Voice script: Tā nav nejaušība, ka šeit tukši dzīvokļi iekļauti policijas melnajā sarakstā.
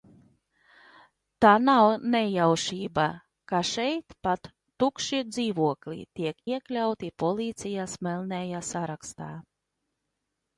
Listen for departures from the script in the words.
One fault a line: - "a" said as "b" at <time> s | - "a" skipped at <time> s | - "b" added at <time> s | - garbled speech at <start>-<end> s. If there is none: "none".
- "pat" added at 4.3 s
- "tiek" added at 6.2 s